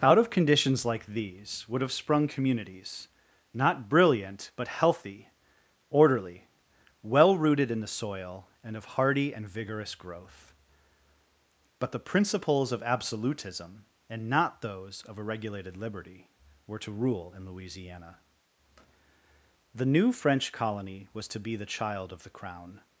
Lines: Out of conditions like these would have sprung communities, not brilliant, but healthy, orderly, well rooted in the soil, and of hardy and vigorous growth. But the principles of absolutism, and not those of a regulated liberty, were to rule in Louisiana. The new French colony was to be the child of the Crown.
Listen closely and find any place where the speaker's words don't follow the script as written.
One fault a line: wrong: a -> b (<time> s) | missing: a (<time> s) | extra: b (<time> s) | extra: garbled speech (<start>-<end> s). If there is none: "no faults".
no faults